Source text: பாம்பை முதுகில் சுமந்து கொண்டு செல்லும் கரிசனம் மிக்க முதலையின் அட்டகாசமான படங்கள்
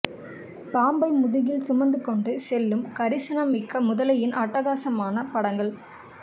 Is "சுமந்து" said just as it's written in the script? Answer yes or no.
yes